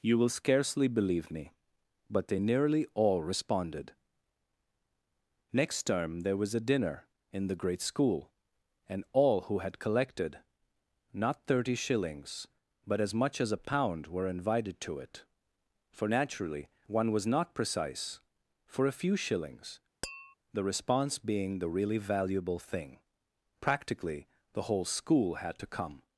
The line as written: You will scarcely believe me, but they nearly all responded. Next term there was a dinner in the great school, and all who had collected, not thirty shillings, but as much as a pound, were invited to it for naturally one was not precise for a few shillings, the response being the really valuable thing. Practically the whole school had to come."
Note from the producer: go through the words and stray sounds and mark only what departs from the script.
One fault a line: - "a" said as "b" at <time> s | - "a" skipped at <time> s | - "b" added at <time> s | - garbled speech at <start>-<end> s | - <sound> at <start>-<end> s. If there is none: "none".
- tap at 20.0-20.3 s